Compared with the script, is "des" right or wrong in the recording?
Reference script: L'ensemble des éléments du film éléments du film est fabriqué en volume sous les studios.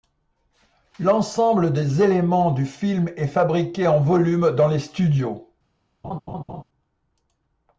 right